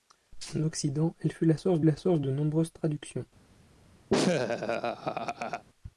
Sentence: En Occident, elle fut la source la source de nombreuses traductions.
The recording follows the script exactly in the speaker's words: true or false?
true